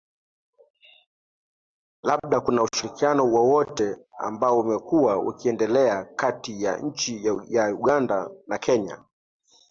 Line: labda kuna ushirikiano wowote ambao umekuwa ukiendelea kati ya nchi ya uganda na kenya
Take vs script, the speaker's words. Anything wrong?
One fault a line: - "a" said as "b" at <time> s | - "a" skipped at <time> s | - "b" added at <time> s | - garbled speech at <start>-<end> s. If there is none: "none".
none